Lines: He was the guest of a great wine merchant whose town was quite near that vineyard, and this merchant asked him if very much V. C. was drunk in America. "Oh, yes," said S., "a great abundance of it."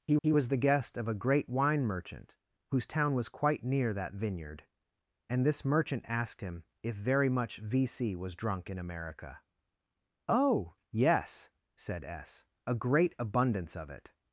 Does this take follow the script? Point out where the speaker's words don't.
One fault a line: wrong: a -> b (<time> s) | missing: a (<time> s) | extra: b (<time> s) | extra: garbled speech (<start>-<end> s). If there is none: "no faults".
extra: he (0.2 s)